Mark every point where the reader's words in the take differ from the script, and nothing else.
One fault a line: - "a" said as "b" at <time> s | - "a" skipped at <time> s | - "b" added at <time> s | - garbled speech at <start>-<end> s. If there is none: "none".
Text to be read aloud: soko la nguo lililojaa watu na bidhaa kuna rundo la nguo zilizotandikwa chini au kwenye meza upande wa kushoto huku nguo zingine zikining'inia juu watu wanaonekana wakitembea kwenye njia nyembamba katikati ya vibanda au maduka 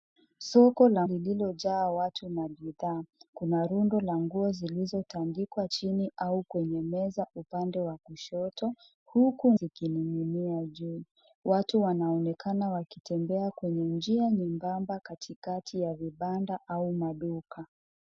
- "nguo" skipped at 1.1 s
- "nguo zingine" skipped at 9.5 s